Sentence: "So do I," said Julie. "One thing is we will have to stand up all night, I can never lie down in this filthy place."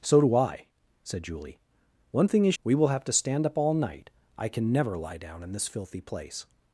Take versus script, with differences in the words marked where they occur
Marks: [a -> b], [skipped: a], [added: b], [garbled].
"So do I," said Julie. "One thing is we will have to stand up all night, I can never lie down in this filthy place."